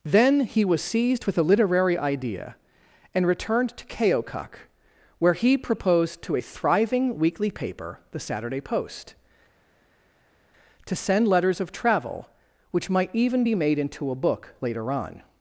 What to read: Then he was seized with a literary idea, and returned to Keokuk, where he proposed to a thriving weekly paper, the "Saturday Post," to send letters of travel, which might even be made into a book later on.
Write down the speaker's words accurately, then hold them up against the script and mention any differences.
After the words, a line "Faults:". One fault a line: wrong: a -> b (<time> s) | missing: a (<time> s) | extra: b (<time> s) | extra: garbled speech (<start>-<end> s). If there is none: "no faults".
Then he was seized with a literary idea, and returned to Keokuk, where he proposed to a thriving weekly paper, the "Saturday Post," to send letters of travel, which might even be made into a book later on.
Faults:
no faults